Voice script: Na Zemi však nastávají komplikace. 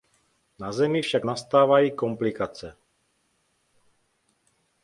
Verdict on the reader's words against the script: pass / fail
pass